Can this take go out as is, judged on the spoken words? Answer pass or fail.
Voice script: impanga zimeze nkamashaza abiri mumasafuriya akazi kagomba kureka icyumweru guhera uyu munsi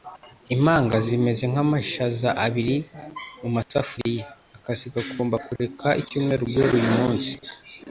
pass